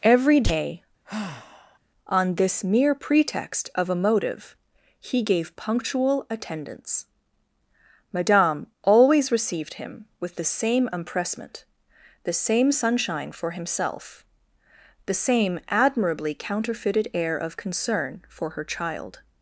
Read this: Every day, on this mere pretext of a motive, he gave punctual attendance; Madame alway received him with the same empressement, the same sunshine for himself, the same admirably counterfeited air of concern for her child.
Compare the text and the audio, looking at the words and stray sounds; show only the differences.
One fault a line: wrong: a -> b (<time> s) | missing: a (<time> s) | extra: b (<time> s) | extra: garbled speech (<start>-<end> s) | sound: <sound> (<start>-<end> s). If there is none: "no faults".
sound: sigh (1.0-1.8 s)
wrong: alway -> always (8.8 s)